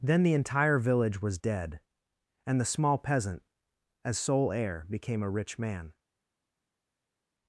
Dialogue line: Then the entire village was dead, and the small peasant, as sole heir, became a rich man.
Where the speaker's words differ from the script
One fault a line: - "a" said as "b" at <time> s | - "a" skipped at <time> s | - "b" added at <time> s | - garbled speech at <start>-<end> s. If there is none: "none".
none